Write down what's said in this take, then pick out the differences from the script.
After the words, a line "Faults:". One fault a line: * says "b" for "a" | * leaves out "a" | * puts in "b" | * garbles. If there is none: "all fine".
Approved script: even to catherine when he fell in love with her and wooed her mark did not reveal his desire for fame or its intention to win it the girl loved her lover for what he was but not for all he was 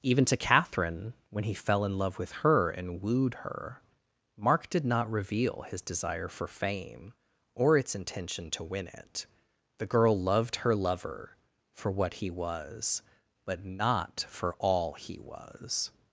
even to catherine when he fell in love with her and wooed her mark did not reveal his desire for fame or its intention to win it the girl loved her lover for what he was but not for all he was
Faults:
all fine